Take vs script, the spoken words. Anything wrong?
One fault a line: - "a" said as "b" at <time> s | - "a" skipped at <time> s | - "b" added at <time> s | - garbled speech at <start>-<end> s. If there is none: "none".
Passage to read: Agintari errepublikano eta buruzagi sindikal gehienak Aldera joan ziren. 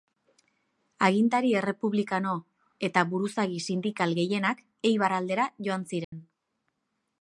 - "Eibar" added at 4.9 s